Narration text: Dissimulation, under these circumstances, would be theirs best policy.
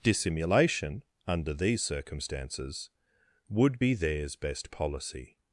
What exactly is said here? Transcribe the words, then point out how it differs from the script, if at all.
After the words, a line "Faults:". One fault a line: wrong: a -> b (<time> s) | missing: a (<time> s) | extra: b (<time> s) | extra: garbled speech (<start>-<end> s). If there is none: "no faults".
Dissimulation, under these circumstances, would be theirs best policy.
Faults:
no faults